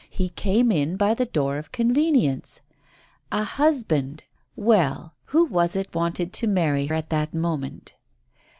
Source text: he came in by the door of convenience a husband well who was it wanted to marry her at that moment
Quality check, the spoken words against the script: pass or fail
fail